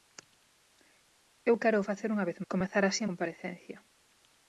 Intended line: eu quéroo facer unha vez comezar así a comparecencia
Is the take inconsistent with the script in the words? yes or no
no